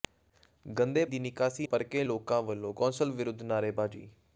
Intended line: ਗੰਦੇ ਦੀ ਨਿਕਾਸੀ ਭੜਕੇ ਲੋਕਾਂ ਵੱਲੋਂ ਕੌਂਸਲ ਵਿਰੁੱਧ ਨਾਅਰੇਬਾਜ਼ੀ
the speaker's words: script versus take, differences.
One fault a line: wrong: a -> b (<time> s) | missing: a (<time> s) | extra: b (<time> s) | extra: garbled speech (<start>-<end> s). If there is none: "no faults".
no faults